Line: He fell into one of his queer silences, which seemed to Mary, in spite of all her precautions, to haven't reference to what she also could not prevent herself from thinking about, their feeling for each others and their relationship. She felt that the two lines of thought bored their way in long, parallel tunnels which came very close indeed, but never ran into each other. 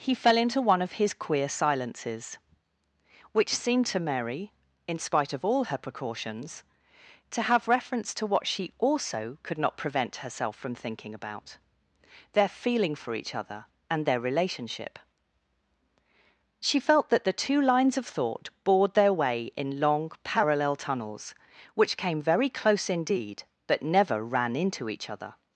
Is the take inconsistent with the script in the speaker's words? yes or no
yes